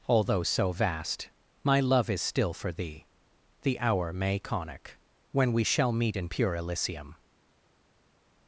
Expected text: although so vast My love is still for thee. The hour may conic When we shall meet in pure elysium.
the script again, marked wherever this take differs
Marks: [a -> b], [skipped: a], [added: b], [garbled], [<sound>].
although so vast My love is still for thee. The hour may conic When we shall meet in pure elysium.